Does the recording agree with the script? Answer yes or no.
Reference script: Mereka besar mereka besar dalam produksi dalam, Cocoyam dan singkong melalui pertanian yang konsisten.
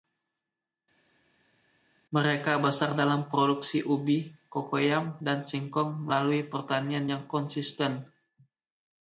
no